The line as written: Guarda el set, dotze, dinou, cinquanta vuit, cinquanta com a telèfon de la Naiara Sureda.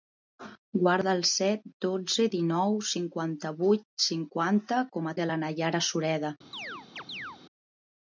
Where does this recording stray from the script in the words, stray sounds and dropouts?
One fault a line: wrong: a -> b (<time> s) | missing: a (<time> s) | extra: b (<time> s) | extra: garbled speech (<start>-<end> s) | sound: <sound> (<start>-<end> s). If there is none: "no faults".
missing: telèfon (5.2 s)
sound: chirp (6.5-7.4 s)